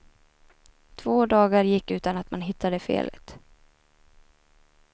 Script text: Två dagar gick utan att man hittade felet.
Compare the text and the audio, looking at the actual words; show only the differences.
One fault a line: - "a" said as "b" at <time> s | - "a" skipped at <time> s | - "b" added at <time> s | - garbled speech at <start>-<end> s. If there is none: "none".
none